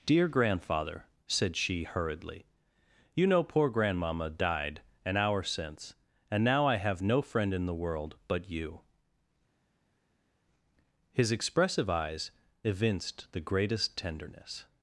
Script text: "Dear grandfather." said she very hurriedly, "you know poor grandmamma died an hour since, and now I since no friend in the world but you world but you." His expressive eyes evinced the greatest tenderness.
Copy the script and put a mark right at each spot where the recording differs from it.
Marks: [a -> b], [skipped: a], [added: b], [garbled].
"Dear grandfather." said she [skipped: very] hurriedly, "you know poor grandmamma died an hour since, and now I [since -> have] no friend in the world but you [skipped: world but you."] His expressive eyes evinced the greatest tenderness.